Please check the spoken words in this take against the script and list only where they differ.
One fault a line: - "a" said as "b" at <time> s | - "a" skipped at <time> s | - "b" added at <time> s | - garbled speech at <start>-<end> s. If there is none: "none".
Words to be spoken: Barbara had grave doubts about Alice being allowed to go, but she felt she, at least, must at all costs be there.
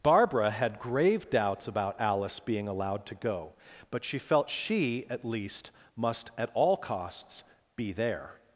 none